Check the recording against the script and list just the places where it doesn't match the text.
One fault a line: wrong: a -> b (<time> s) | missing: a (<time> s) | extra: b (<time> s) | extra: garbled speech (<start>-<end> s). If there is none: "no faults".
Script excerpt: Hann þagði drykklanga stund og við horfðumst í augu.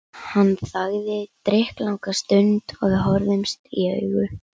no faults